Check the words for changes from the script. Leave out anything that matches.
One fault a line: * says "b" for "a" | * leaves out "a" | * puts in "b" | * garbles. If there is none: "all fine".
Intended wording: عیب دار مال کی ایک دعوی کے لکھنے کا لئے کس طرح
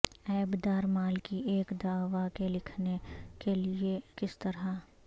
* says "کے" for "کا"